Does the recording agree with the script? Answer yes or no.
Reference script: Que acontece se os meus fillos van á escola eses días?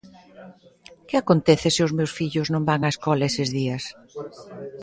no